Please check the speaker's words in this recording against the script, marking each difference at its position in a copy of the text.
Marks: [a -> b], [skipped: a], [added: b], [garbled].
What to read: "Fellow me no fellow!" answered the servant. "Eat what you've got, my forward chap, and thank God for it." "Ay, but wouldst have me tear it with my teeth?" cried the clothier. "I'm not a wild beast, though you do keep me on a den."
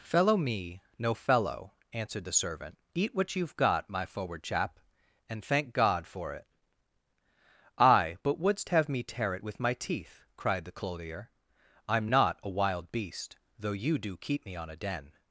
"Fellow me no fellow!" answered the servant. "Eat what you've got, my forward chap, and thank God for it." "Ay, but wouldst have me tear it with my teeth?" cried the clothier. "I'm not a wild beast, though you do keep me on a den."